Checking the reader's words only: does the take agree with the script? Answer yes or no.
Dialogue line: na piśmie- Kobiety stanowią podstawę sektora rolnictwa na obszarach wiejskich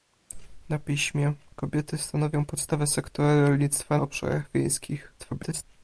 no